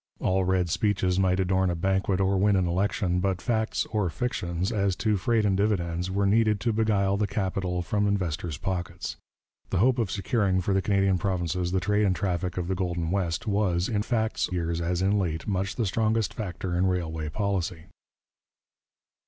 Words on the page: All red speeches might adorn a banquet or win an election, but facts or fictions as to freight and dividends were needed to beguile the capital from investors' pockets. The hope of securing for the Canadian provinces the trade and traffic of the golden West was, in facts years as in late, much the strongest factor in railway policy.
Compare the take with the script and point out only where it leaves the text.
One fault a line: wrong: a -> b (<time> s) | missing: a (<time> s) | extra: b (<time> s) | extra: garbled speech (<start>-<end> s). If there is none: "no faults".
no faults